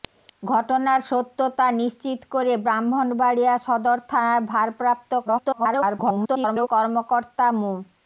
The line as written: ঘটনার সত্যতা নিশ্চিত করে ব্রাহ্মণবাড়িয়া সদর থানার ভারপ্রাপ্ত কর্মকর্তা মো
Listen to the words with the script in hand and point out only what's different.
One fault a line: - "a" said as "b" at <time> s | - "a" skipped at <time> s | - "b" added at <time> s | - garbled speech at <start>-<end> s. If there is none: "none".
- garbled speech at 5.3-6.7 s